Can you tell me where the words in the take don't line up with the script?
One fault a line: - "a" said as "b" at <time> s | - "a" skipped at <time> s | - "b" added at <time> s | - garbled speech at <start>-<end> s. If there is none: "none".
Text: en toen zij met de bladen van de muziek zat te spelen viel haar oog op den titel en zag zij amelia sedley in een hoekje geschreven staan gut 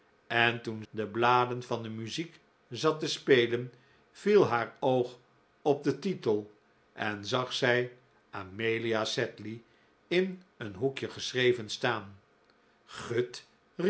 - "zij met" skipped at 0.8 s